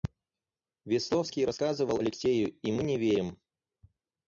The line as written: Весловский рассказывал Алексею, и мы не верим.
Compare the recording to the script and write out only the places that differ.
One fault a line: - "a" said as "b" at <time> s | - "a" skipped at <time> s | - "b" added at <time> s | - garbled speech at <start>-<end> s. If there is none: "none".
none